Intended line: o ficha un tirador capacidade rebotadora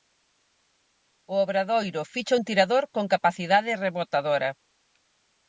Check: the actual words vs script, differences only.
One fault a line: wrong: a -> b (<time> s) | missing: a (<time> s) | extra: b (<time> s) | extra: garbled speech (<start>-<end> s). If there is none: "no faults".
extra: obradoiro (1.4 s)
extra: con (2.9 s)